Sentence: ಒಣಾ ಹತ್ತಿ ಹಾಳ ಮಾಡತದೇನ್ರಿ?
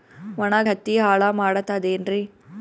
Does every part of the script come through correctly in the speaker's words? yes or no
yes